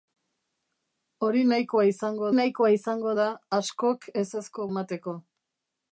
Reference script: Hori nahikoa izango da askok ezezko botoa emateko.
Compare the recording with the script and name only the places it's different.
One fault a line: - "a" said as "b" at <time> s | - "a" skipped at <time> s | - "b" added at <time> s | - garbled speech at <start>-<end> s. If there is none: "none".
- "nahikoa izango" added at 2.4 s
- "botoa" skipped at 4.7 s